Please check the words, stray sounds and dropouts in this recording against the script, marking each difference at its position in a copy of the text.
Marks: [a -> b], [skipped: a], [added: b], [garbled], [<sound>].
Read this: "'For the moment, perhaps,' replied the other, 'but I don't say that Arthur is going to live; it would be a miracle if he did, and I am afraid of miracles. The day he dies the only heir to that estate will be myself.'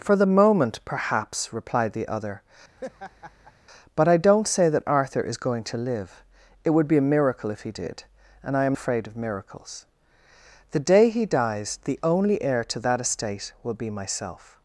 "'For the moment, perhaps,' replied the other, [laugh] 'but I don't say that Arthur is going to live; it would be a miracle if he did, and I am afraid of miracles. The day he dies the only heir to that estate will be myself.'